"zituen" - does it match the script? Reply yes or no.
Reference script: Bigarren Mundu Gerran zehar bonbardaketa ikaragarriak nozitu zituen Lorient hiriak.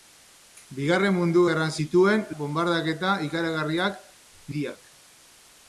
no